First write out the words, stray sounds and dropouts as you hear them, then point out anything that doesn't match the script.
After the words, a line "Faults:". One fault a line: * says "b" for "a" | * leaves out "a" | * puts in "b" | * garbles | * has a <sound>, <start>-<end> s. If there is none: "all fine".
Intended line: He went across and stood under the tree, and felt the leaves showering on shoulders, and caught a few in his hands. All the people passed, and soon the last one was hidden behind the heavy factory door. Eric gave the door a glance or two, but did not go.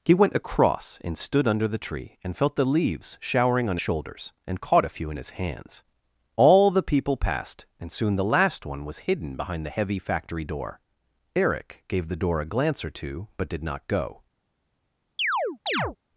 He went across and stood under the tree, and felt the leaves showering on shoulders, and caught a few in his hands. All the people passed, and soon the last one was hidden behind the heavy factory door. Eric gave the door a glance or two, but did not go.
Faults:
* has a chirp, 15.2-16.0 s